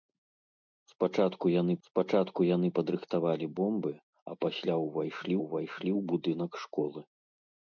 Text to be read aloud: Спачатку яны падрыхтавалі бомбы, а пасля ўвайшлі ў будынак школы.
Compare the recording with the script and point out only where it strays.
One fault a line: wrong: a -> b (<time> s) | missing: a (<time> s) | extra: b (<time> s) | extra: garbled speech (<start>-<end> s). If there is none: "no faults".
extra: спачатку яны (1.9 s)
extra: ўвайшлі (5.4 s)